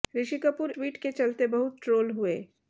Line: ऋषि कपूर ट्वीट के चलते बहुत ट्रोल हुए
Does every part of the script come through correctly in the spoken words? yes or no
yes